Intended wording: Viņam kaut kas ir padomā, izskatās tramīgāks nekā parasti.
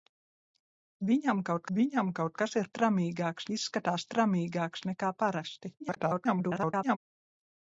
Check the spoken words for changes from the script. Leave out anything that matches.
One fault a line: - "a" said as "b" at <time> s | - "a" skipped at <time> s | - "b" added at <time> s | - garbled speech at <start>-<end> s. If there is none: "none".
- "viņam kaut" added at 1.8 s
- "padomā" said as "tramīgāks" at 2.8 s
- garbled speech at 5.8-7.0 s